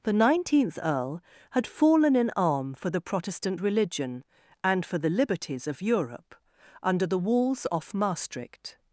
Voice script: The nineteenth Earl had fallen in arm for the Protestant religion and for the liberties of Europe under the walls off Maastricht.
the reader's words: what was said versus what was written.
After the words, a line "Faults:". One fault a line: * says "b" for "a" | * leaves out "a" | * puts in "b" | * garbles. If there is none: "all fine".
The nineteenth Earl had fallen in arm for the Protestant religion and for the liberties of Europe under the walls off Maastricht.
Faults:
all fine